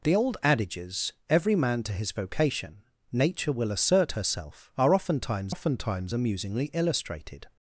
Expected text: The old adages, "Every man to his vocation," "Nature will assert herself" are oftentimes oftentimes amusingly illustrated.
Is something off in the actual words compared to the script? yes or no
no